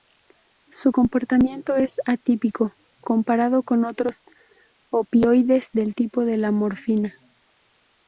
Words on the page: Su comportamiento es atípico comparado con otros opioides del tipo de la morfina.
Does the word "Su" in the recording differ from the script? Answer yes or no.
no